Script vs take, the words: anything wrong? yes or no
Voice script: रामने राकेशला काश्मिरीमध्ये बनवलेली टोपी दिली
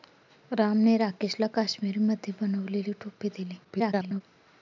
yes